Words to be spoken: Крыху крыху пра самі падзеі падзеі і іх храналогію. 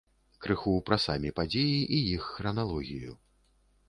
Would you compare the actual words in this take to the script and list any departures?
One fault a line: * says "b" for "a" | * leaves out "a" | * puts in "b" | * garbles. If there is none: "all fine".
* leaves out "крыху"
* leaves out "падзеі"